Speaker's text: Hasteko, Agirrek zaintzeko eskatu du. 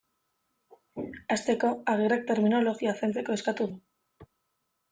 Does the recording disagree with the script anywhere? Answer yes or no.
yes